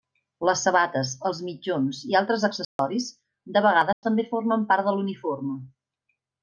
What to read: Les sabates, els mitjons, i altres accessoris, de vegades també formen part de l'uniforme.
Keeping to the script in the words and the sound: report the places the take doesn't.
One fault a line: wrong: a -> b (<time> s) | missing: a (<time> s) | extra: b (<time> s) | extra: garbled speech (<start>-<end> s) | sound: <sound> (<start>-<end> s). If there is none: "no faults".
sound: dropout (2.6-2.8 s)
sound: dropout (3.9-4.0 s)